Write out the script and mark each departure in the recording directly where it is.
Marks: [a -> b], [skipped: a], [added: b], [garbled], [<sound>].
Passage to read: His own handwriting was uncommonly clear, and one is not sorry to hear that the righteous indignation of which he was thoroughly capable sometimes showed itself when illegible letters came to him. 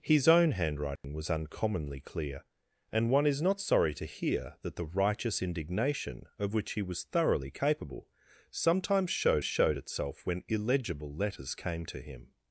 His own handwriting [dropout] was uncommonly clear, and one is not sorry to hear that the righteous indignation of which he was thoroughly capable sometimes showed [added: showed] itself when illegible letters came to him.